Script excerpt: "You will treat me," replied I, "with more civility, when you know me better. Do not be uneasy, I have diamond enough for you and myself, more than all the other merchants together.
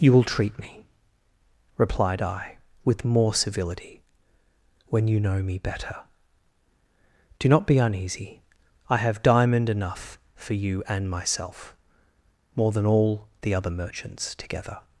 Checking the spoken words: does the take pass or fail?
pass